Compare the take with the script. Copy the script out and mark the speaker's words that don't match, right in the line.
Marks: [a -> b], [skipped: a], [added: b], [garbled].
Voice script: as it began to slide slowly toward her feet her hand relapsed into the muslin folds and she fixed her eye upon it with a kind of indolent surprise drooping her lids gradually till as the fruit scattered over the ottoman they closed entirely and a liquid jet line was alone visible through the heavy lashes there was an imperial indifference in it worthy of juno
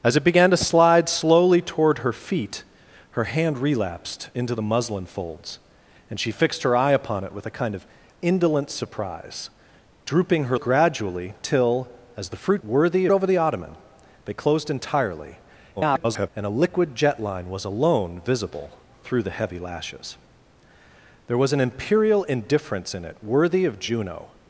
as it began to slide slowly toward her feet her hand relapsed into the muslin folds and she fixed her eye upon it with a kind of indolent surprise drooping her [skipped: lids] gradually till as the fruit [scattered -> worthy] over the ottoman they closed entirely [garbled] and a liquid jet line was alone visible through the heavy lashes there was an imperial indifference in it worthy of juno